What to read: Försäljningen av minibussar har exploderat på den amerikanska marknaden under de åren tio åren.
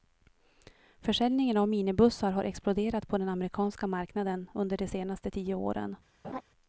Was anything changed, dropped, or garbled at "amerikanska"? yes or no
no